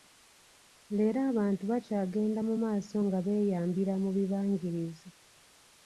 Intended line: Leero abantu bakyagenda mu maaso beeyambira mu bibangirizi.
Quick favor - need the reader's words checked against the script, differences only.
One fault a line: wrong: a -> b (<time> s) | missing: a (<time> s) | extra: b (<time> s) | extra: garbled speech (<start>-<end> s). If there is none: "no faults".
extra: nga (3.1 s)